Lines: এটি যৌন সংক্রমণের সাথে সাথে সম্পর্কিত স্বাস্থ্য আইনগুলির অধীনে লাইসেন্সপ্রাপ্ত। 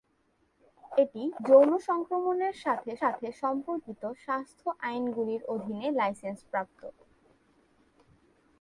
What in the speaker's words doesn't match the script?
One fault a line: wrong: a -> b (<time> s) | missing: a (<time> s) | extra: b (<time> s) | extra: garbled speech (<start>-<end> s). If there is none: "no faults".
no faults